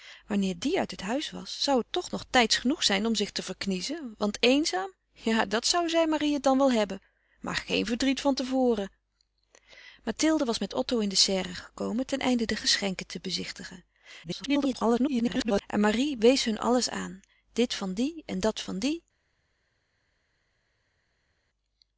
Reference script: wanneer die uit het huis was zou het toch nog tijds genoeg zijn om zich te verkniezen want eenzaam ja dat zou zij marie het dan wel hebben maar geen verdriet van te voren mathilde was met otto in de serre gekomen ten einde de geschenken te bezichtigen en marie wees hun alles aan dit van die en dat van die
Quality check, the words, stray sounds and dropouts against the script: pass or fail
fail